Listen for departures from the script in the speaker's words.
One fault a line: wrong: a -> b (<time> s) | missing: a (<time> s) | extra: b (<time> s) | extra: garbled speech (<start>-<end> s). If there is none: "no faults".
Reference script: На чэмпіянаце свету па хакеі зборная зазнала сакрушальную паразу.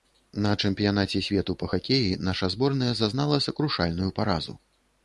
extra: наша (2.3 s)